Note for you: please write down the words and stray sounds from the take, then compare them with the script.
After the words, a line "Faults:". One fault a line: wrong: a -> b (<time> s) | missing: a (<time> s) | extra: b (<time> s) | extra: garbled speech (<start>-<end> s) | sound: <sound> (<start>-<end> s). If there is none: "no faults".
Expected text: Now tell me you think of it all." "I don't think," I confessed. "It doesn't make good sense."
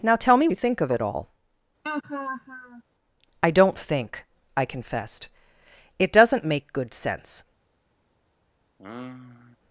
Now tell me you think of it all." "I don't think," I confessed. "It doesn't make good sense."
Faults:
sound: laugh (1.8-2.8 s)
sound: sigh (8.8-9.6 s)